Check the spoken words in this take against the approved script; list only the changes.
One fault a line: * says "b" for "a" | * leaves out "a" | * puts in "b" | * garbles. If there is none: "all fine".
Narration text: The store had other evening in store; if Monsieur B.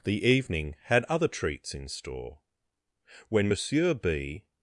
* says "evening" for "store"
* says "treats" for "evening"
* says "when" for "if"